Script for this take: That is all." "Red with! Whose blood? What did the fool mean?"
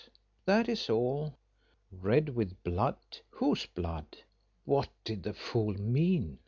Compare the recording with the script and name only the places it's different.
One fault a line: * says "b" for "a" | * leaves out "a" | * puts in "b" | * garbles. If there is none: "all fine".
* puts in "blood"